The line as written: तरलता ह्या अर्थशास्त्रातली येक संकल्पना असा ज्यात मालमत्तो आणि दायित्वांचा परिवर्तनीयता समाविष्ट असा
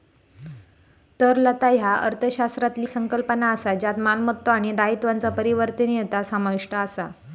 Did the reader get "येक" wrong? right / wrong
wrong